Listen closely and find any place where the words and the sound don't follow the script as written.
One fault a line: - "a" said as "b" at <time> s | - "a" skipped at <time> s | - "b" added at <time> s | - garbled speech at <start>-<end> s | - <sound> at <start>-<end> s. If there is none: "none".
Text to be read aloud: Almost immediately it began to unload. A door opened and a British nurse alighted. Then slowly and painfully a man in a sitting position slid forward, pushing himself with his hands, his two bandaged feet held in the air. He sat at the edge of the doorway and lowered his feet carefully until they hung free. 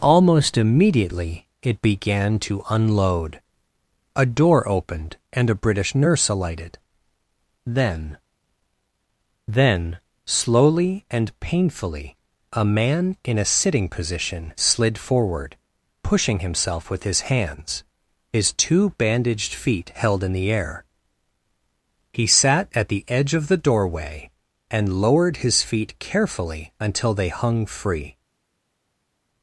- "Then" added at 9.5 s